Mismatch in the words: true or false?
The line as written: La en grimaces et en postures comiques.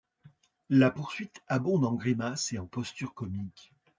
true